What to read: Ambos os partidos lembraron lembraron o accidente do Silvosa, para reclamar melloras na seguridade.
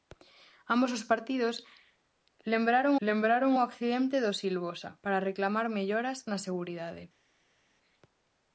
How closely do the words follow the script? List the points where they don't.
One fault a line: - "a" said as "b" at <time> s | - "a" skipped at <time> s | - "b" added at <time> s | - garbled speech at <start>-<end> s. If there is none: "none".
none